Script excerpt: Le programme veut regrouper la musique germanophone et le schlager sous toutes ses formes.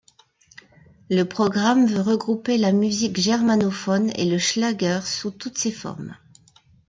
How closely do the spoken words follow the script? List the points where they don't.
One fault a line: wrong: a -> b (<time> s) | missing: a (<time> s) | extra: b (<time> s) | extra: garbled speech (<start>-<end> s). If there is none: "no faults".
no faults